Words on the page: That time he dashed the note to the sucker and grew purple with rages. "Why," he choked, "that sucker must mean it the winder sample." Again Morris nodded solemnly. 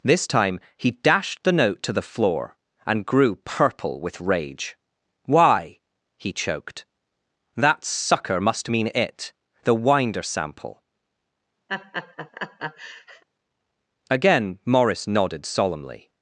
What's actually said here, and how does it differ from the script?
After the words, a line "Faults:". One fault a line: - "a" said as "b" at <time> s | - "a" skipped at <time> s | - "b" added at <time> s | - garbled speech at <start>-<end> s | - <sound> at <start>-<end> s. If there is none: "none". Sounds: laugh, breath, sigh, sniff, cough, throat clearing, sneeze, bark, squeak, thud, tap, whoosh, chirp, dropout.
This time he dashed the note to the floor and grew purple with rage. "Why," he choked, "that sucker must mean it the winder sample." Again Morris nodded solemnly.
Faults:
- "That" said as "This" at 0.0 s
- "sucker" said as "floor" at 2.0 s
- "rages" said as "rage" at 4.2 s
- laugh at 11.7-13.2 s